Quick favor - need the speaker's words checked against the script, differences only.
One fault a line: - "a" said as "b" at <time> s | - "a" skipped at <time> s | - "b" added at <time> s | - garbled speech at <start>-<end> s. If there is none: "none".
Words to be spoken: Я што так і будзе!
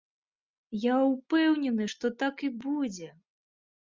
- "ўпэўнены" added at 1.1 s